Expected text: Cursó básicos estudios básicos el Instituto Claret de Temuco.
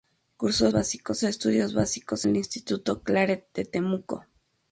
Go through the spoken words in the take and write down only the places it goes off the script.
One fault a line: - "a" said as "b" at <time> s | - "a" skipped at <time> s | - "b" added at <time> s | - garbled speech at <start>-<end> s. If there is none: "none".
none